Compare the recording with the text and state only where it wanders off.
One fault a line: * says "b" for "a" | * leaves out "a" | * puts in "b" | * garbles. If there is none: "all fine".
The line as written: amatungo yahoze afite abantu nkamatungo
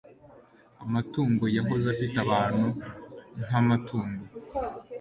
all fine